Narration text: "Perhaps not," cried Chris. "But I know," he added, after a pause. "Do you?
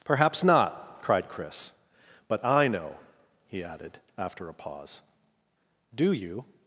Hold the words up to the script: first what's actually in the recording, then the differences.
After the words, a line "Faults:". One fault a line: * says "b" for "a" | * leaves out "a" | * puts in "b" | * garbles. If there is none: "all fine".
"Perhaps not," cried Chris. "But I know," he added, after a pause. "Do you?
Faults:
all fine